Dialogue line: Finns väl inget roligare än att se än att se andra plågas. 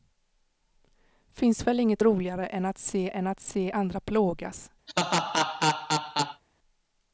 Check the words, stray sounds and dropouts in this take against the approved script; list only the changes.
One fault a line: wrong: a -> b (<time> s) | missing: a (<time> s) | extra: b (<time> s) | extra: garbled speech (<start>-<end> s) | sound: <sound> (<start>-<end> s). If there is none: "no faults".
sound: laugh (4.9-6.4 s)